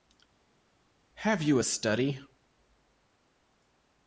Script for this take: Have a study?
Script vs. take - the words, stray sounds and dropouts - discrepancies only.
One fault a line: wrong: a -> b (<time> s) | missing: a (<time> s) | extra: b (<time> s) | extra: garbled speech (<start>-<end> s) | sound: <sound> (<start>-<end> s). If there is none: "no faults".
extra: you (1.4 s)